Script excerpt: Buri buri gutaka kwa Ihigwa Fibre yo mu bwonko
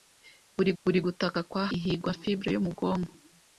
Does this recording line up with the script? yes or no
yes